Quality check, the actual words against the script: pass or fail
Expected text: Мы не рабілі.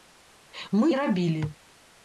pass